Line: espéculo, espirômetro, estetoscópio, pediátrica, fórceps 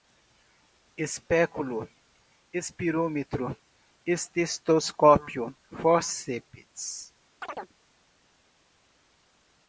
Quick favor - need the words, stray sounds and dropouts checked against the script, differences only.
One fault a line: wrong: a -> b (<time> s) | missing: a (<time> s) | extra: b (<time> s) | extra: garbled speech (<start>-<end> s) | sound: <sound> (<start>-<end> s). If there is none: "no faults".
missing: pediátrica (5.5 s)
sound: chirp (7.4-7.7 s)